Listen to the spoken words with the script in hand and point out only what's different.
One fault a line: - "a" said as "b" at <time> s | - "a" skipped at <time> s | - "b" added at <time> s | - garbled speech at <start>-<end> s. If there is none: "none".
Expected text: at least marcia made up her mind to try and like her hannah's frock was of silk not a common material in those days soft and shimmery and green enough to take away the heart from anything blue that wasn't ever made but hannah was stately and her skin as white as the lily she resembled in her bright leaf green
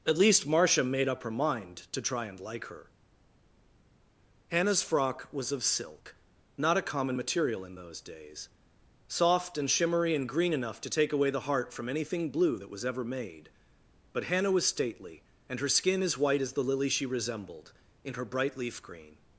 - "wasn't" said as "was" at 12.7 s